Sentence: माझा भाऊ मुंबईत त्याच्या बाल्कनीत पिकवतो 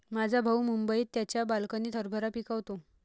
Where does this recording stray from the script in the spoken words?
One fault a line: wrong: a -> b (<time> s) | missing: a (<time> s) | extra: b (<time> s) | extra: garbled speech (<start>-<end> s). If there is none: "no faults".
extra: हरभरा (2.0 s)